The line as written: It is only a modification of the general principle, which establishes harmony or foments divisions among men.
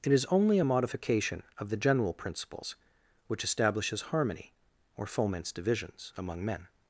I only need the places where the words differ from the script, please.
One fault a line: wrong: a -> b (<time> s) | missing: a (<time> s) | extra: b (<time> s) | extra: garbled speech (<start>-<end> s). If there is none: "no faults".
wrong: principle -> principles (2.1 s)